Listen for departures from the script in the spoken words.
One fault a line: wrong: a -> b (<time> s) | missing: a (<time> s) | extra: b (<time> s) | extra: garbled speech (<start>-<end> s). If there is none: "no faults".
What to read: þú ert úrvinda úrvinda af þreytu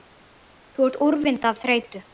missing: úrvinda (1.5 s)